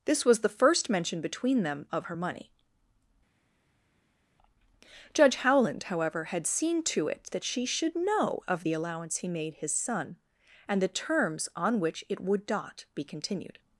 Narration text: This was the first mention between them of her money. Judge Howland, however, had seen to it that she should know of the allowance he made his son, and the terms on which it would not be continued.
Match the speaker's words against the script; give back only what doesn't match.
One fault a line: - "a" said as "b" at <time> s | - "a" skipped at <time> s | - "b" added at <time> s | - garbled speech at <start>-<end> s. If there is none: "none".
none